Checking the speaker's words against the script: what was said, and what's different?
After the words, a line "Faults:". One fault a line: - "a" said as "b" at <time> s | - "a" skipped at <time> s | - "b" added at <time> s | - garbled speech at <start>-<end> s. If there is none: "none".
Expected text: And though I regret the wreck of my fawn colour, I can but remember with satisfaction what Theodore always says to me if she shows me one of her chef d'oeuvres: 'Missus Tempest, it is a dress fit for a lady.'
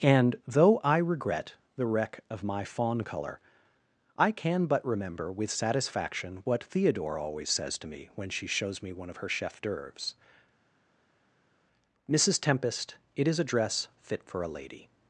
And though I regret the wreck of my fawn colour, I can but remember with satisfaction what Theodore always says to me when she shows me one of her chef d'oeuvres: 'Missus Tempest, it is a dress fit for a lady.'
Faults:
- "if" said as "when" at 8.2 s